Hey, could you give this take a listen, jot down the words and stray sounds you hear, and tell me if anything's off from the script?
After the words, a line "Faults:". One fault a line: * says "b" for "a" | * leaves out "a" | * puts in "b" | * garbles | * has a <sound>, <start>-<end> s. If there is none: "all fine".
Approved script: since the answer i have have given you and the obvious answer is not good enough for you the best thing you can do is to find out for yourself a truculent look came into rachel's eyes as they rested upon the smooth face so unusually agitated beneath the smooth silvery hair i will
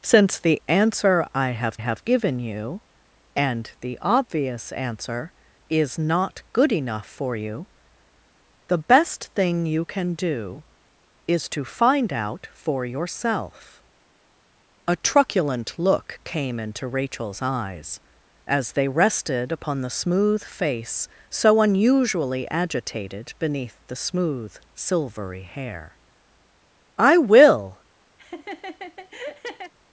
since the answer i have have given you and the obvious answer is not good enough for you the best thing you can do is to find out for yourself a truculent look came into rachel's eyes as they rested upon the smooth face so unusually agitated beneath the smooth silvery hair i will
Faults:
* has a laugh, 28.2-29.7 s